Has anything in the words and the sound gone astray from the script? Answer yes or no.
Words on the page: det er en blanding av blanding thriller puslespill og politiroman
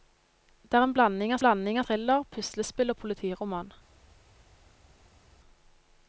no